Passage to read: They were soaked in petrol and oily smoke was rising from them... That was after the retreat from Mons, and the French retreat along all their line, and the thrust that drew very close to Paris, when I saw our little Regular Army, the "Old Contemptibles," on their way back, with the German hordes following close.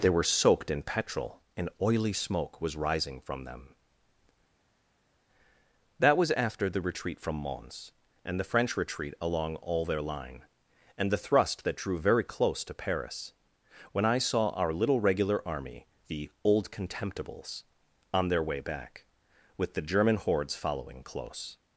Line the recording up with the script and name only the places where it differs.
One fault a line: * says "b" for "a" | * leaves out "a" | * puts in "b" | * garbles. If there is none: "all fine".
all fine